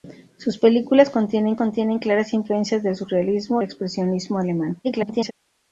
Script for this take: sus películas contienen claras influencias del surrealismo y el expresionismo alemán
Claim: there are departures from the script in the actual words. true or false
true